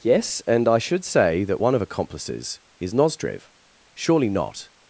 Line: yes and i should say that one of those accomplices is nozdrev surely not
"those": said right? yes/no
no